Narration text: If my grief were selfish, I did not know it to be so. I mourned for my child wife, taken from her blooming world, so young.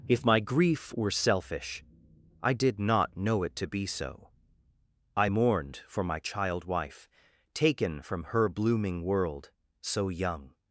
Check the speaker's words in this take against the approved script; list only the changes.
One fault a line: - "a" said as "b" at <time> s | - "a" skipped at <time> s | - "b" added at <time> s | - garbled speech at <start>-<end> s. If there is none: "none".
none